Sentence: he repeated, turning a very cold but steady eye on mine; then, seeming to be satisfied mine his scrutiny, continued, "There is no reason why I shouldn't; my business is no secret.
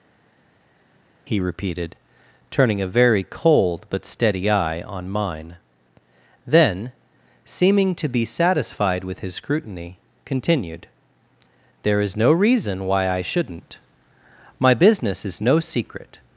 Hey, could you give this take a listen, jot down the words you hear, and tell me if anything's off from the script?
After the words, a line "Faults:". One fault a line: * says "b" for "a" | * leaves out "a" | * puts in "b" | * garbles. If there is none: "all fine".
he repeated, turning a very cold but steady eye on mine; then, seeming to be satisfied with his scrutiny, continued, "There is no reason why I shouldn't; my business is no secret.
Faults:
* says "with" for "mine"